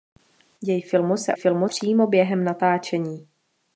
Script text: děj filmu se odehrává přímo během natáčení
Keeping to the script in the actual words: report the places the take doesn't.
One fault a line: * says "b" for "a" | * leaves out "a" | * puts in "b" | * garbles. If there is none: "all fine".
* says "filmu" for "odehrává"